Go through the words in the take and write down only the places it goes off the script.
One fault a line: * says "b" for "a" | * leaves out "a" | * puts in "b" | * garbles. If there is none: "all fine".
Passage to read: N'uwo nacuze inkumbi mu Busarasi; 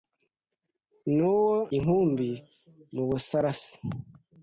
* leaves out "nacuze"